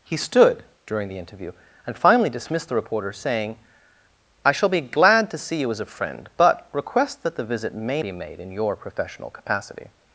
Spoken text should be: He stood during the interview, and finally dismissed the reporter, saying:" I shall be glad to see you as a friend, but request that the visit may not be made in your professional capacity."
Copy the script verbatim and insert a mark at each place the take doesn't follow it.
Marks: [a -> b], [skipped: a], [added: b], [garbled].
He stood during the interview, and finally dismissed the reporter, saying:" I shall be glad to see you as a friend, but request that the visit may [skipped: not] be made in your professional capacity."